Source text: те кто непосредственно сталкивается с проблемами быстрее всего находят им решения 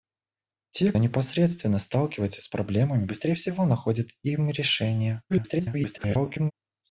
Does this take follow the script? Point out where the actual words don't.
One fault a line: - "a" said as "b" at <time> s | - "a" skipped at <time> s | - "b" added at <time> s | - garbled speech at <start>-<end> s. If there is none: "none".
- "кто" skipped at 0.9 s
- garbled speech at 5.3-6.5 s